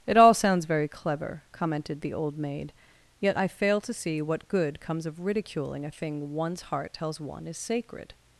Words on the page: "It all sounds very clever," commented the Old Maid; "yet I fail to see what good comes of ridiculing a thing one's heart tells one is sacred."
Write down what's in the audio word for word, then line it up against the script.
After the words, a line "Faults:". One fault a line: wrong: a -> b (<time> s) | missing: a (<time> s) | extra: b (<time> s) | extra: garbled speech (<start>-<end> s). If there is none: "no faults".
"It all sounds very clever," commented the Old Maid; "yet I fail to see what good comes of ridiculing a thing one's heart tells one is sacred."
Faults:
no faults